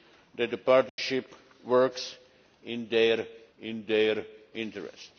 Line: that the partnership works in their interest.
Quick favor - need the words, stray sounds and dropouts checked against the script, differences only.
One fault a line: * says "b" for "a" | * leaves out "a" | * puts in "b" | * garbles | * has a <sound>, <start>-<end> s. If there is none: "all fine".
* has a dropout, 0.9-1.0 s
* puts in "in their"